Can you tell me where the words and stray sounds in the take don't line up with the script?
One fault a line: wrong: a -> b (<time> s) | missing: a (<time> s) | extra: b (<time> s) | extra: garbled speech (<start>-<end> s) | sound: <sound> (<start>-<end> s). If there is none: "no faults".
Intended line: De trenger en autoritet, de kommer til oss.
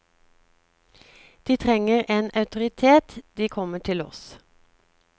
no faults